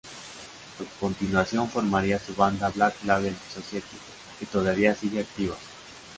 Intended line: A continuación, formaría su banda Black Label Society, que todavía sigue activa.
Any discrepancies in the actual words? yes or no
no